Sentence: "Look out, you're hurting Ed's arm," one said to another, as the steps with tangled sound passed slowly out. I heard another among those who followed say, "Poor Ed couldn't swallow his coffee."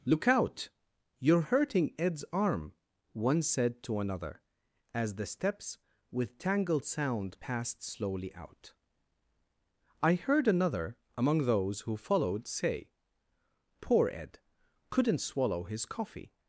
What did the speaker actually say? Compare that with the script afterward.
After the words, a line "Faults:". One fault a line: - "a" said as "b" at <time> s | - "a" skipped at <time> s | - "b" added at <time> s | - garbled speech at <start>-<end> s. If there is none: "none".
"Look out, you're hurting Ed's arm," one said to another, as the steps with tangled sound passed slowly out. I heard another among those who followed say, "Poor Ed couldn't swallow his coffee."
Faults:
none